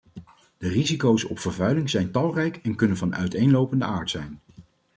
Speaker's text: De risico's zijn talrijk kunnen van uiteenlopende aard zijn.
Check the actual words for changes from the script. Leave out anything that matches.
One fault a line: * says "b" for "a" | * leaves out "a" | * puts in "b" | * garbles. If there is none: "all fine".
* puts in "op vervuiling"
* puts in "en"